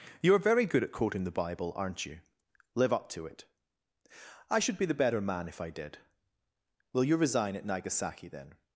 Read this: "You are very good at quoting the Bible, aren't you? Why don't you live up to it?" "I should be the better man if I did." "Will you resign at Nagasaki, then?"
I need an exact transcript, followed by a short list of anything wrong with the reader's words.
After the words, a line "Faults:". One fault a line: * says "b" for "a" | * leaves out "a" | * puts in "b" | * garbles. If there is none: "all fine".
"You are very good at quoting the Bible, aren't you? live up to it?" "I should be the better man if I did." "Will you resign at Nagasaki, then?"
Faults:
* leaves out "Why don't you"